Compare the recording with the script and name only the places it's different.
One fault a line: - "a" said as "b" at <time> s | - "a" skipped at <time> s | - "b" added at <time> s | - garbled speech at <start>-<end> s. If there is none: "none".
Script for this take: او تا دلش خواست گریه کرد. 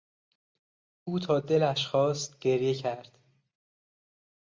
none